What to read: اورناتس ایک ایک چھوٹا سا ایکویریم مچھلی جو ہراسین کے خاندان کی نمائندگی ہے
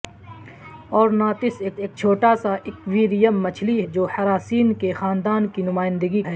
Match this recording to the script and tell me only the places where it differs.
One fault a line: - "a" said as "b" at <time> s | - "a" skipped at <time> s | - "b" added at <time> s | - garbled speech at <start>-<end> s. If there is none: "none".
none